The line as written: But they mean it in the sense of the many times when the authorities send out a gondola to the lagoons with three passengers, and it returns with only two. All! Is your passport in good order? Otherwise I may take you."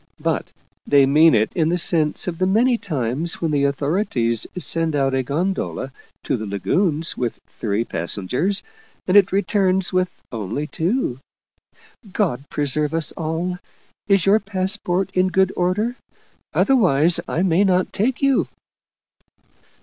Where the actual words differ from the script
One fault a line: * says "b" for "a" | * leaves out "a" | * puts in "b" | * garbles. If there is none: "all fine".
* puts in "God preserve us"
* puts in "not"